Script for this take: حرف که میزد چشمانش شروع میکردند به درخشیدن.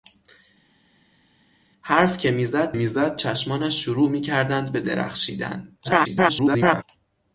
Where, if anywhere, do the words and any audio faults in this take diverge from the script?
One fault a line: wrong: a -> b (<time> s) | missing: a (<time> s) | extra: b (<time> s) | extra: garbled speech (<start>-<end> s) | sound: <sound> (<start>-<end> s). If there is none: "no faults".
extra: میزد (2.7 s)
extra: garbled speech (5.8-6.8 s)